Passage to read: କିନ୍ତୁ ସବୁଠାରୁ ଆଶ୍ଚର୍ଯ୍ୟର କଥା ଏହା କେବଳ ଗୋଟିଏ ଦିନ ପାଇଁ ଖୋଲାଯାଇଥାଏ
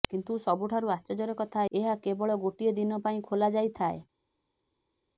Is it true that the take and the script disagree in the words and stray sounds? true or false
false